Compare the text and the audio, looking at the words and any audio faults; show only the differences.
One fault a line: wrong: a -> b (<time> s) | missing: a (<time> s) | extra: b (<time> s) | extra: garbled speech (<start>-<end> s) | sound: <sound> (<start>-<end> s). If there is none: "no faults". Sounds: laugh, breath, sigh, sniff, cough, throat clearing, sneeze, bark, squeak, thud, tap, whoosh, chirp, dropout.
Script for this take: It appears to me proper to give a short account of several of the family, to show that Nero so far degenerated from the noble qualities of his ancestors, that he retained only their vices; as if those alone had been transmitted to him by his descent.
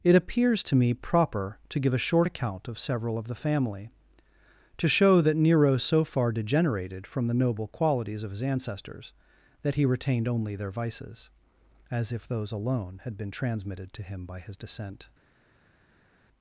no faults